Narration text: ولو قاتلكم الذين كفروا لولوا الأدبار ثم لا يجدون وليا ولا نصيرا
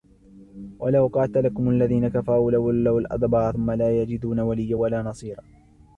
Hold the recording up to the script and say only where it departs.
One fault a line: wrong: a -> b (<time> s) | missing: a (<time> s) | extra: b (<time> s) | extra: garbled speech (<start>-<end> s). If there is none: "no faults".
no faults